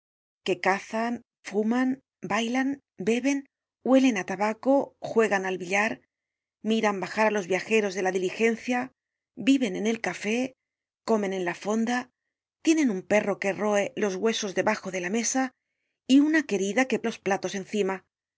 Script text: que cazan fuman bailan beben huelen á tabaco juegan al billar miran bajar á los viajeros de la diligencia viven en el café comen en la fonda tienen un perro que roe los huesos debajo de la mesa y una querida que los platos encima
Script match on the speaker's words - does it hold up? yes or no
yes